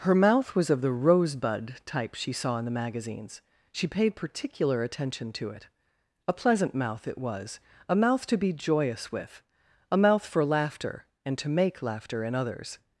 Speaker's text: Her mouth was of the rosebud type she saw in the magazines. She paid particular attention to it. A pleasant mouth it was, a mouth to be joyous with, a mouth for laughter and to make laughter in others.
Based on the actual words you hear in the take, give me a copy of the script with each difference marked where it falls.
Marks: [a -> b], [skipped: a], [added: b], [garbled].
Her mouth was of the rosebud type she saw in the magazines. She paid particular attention to it. A pleasant mouth it was, a mouth to be joyous with, a mouth for laughter and to make laughter in others.